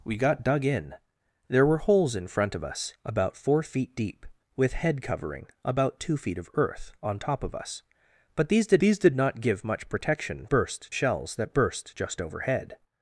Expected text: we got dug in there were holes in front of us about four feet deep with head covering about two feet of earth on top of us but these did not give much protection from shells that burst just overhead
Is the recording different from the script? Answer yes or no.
yes